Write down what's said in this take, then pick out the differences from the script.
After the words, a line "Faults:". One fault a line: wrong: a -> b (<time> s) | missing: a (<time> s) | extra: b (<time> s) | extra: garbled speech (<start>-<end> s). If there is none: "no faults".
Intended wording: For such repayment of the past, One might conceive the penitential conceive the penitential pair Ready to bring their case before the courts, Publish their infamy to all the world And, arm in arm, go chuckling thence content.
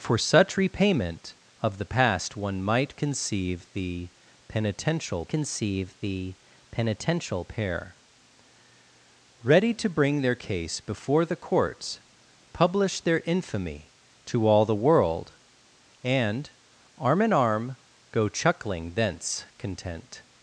For such repayment of the past, One might conceive the penitential conceive the penitential pair Ready to bring their case before the courts, Publish their infamy to all the world And, arm in arm, go chuckling thence content.
Faults:
no faults